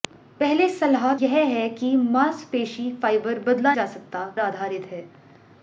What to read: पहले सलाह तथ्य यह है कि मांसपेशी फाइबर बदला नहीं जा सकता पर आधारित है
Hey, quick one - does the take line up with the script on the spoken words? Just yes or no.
no